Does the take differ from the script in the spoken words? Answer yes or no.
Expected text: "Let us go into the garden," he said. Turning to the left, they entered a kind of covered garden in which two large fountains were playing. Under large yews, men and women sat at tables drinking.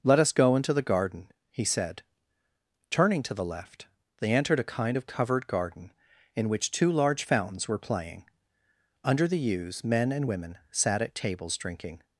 yes